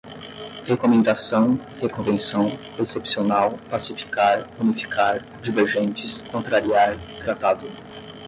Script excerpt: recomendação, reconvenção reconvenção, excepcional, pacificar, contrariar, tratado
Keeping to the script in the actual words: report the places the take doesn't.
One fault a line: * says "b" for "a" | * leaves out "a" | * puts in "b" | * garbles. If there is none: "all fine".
* leaves out "reconvenção"
* puts in "unificar divergentes"